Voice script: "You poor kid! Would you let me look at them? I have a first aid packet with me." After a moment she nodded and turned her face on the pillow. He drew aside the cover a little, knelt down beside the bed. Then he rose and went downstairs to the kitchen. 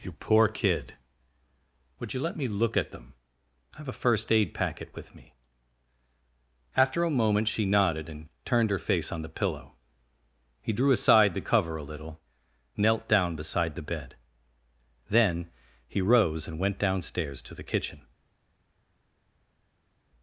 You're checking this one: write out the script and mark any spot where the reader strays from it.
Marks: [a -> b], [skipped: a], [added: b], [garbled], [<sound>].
"You poor kid! Would you let me look at them? I have a first aid packet with me." After a moment she nodded and turned her face on the pillow. He drew aside the cover a little, knelt down beside the bed. Then he rose and went downstairs to the kitchen.